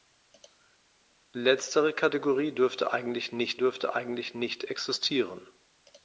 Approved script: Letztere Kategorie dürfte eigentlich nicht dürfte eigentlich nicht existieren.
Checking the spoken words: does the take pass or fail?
pass